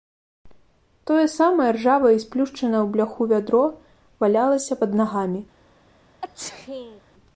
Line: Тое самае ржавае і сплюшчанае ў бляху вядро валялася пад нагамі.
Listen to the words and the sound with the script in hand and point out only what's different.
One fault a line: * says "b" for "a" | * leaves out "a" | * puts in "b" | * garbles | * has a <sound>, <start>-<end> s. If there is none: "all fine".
* has a sneeze, 6.2-7.0 s